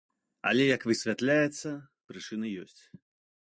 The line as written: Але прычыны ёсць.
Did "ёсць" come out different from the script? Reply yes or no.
no